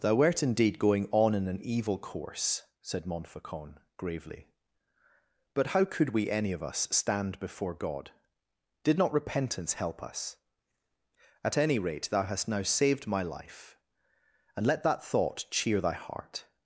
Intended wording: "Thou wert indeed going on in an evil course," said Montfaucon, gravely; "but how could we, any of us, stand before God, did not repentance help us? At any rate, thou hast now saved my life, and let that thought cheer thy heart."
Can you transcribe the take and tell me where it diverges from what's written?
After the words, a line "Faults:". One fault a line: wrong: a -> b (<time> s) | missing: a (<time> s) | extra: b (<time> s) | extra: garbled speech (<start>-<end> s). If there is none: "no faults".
"Thou wert indeed going on in an evil course," said Montfaucon, gravely; "but how could we, any of us, stand before God, did not repentance help us? At any rate, thou hast now saved my life, and let that thought cheer thy heart."
Faults:
no faults